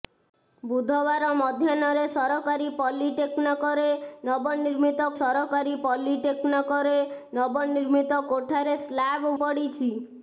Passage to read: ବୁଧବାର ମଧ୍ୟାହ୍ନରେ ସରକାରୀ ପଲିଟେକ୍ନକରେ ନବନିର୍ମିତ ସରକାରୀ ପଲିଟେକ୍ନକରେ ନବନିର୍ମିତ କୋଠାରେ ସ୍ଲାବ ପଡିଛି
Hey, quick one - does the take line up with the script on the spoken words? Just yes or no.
yes